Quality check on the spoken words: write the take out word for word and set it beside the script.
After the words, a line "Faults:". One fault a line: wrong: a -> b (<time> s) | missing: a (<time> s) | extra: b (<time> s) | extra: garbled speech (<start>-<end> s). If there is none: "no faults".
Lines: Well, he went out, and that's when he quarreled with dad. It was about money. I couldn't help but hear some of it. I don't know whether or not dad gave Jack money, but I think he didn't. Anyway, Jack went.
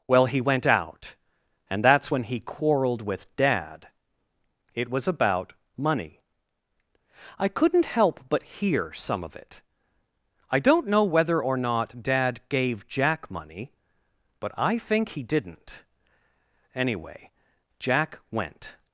Well, he went out, and that's when he quarreled with dad. It was about money. I couldn't help but hear some of it. I don't know whether or not dad gave Jack money, but I think he didn't. Anyway, Jack went.
Faults:
no faults